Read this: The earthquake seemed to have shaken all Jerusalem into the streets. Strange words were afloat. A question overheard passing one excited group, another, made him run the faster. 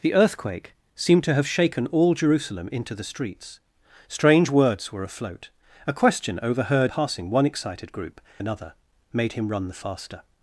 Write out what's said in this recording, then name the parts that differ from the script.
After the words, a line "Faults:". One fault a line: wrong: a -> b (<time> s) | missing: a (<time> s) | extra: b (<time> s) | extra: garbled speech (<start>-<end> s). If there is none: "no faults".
The earthquake seemed to have shaken all Jerusalem into the streets. Strange words were afloat. A question overheard passing one excited group, another, made him run the faster.
Faults:
no faults